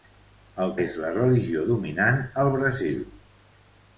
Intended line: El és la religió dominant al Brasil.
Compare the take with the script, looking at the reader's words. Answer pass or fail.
pass